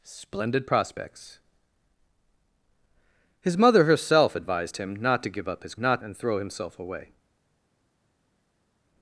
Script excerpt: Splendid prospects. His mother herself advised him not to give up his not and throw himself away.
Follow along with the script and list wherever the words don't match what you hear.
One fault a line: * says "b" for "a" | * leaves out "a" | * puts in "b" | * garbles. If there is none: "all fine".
all fine